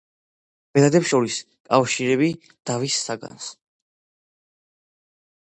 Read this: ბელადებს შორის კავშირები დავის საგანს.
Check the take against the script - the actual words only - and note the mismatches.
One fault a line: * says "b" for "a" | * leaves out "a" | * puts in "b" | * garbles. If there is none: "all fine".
all fine